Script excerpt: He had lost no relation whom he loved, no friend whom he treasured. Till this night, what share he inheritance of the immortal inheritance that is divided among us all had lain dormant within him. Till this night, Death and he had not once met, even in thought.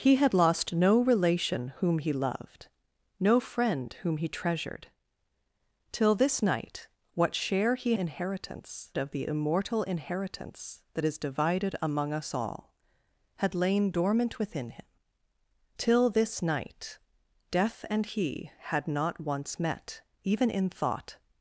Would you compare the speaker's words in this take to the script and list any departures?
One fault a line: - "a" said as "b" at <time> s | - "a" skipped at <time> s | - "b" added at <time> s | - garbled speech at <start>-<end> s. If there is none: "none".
none